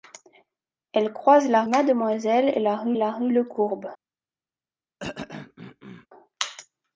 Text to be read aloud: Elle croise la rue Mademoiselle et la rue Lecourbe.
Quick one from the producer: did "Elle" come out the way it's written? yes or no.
yes